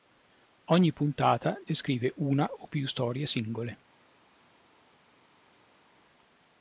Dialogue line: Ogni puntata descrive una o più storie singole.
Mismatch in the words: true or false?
false